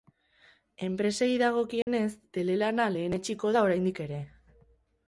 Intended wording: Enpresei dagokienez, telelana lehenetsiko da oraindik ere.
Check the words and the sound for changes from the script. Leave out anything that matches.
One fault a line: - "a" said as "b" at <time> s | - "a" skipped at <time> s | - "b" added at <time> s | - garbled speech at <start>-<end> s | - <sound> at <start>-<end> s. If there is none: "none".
- dropout at 1.8-1.9 s